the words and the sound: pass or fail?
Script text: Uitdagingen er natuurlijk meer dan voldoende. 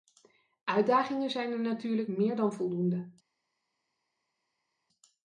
fail